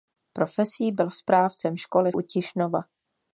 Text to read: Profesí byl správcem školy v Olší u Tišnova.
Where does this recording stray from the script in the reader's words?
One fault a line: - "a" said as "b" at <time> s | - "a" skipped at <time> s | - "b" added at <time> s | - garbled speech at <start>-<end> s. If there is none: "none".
- "v Olší" skipped at 2.1 s